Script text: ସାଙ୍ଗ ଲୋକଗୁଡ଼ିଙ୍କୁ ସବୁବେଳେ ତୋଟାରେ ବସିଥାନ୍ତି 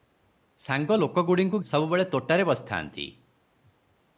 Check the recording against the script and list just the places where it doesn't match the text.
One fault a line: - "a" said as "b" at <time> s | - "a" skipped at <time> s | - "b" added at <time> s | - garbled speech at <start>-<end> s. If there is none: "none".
none